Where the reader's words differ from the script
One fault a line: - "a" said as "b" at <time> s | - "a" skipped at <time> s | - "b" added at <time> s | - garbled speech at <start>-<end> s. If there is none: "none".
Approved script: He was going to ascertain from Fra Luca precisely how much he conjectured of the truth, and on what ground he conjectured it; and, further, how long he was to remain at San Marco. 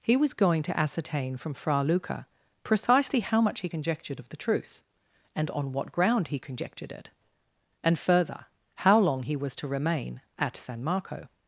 none